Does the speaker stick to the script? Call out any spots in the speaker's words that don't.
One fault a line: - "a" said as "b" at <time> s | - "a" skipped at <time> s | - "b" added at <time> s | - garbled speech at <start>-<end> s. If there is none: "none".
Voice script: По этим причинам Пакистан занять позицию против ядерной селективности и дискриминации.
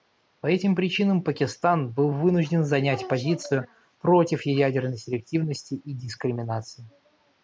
- "был вынужден" added at 1.9 s